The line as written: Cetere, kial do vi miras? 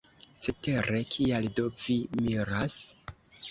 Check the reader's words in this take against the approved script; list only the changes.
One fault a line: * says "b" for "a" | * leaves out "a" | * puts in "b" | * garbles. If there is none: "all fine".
all fine